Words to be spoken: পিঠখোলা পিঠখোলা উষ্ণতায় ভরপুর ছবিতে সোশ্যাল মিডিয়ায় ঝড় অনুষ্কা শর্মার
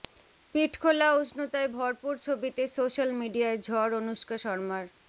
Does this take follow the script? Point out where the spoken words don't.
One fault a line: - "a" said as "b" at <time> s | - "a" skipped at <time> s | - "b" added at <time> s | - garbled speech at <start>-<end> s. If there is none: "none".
- "পিঠখোলা" skipped at 1.1 s